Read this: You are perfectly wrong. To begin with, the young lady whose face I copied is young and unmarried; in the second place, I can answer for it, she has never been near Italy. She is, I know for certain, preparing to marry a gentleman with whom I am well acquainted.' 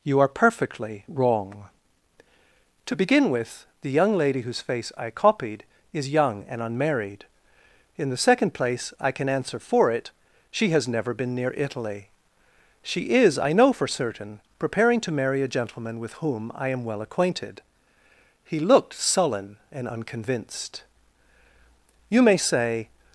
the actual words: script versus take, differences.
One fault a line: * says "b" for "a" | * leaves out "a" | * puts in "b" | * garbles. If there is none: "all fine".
* puts in "He looked sullen and unconvinced You may say"